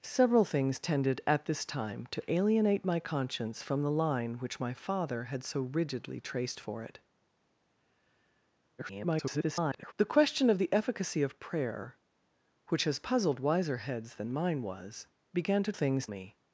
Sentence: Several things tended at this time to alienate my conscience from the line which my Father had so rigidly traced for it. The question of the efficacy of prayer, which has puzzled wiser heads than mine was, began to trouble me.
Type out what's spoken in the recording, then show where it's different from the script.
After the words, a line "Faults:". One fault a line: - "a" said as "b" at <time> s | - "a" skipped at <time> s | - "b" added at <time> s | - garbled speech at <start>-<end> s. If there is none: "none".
Several things tended at this time to alienate my conscience from the line which my Father had so rigidly traced for it. [garbled] The question of the efficacy of prayer, which has puzzled wiser heads than mine was, began to things me.
Faults:
- garbled speech at 8.8-9.9 s
- "trouble" said as "things" at 15.7 s